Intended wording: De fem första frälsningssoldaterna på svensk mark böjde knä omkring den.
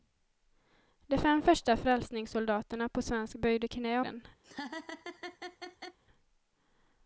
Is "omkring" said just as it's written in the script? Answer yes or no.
no